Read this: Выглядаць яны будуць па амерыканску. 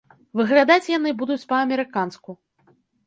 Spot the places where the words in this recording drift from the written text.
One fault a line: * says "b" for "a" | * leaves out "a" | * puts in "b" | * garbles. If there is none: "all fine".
all fine